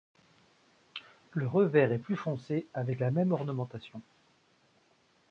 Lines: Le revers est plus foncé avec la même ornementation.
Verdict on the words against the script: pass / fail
pass